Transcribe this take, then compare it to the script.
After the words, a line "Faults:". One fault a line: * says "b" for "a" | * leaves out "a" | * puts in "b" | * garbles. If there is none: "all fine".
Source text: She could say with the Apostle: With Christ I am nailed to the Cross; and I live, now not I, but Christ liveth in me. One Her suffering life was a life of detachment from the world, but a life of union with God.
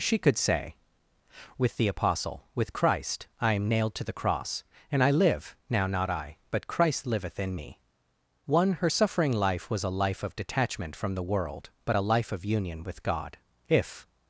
She could say with the Apostle: With Christ I am nailed to the Cross; and I live, now not I, but Christ liveth in me. One Her suffering life was a life of detachment from the world, but a life of union with God. If
Faults:
* puts in "If"